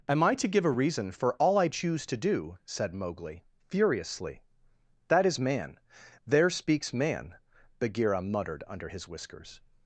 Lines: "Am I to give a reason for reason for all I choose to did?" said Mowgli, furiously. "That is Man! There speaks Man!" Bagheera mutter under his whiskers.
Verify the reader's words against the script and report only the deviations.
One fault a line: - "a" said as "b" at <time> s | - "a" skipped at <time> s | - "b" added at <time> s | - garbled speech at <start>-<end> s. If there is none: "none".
- "reason for" skipped at 1.3 s
- "did" said as "do" at 2.2 s
- "mutter" said as "muttered" at 8.2 s